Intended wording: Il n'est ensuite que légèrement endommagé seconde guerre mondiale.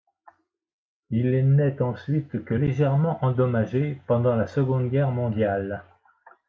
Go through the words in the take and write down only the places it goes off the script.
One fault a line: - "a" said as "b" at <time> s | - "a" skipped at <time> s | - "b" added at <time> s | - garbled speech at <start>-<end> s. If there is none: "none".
- "pendant la" added at 4.1 s